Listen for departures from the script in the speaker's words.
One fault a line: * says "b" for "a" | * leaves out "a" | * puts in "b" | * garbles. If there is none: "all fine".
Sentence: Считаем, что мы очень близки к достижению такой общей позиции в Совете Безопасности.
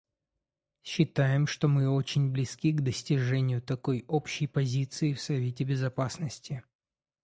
all fine